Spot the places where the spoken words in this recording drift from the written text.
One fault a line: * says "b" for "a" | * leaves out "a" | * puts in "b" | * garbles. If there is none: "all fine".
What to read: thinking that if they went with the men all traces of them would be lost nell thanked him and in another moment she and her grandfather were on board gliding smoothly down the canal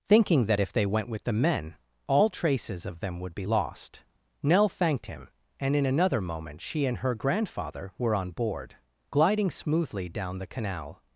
all fine